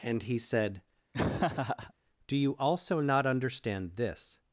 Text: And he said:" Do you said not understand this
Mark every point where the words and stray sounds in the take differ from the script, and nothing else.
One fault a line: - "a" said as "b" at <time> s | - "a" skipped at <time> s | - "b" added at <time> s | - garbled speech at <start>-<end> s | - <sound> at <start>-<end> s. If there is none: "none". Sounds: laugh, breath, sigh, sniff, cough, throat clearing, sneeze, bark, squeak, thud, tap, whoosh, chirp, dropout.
- laugh at 1.1-1.9 s
- "said" said as "also" at 2.6 s